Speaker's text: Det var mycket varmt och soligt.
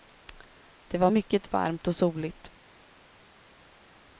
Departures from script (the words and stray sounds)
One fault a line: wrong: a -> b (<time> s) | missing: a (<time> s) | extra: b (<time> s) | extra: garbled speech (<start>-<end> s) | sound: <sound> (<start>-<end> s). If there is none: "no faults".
no faults